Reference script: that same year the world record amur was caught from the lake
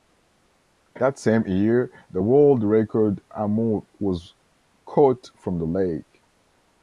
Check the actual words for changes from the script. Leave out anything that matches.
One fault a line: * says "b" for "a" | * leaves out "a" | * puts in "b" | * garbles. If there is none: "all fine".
all fine